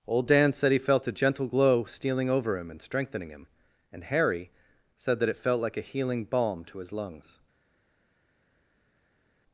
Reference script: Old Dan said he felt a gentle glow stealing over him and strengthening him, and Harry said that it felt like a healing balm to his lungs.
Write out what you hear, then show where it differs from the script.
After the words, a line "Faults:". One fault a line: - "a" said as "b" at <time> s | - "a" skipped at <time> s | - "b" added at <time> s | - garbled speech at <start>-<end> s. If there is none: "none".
Old Dan said he felt a gentle glow stealing over him and strengthening him, and Harry said that it felt like a healing balm to his lungs.
Faults:
none